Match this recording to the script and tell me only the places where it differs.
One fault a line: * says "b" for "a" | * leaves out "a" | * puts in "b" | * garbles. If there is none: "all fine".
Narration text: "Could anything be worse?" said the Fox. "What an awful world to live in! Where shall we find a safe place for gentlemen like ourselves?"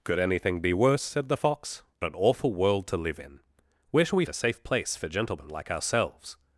* leaves out "What"
* leaves out "find"